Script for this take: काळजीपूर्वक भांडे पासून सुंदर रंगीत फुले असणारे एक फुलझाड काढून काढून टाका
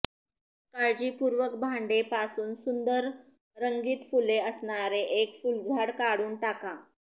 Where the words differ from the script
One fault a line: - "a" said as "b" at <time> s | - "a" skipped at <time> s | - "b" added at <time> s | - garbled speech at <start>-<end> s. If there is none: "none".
- "काढून" skipped at 6.3 s